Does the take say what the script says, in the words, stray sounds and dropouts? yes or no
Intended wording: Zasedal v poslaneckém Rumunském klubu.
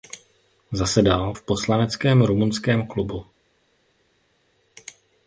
yes